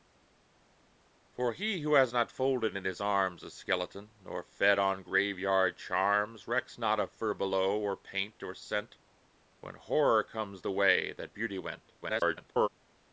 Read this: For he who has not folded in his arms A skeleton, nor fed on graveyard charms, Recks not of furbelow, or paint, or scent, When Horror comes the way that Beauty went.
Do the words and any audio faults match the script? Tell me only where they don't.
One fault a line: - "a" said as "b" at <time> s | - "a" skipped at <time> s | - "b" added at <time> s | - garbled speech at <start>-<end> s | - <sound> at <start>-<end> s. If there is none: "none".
- garbled speech at 12.0-12.7 s